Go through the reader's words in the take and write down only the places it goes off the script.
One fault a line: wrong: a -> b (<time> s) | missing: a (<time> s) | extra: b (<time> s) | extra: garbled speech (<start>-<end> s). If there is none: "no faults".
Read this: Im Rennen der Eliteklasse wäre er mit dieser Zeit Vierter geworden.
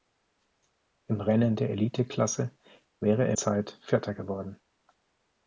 missing: mit dieser (3.4 s)